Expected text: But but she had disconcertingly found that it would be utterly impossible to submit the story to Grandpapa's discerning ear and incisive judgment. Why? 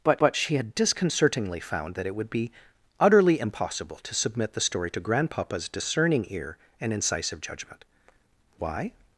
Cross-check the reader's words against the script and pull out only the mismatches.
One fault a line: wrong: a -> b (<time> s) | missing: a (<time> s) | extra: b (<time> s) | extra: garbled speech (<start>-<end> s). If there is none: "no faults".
no faults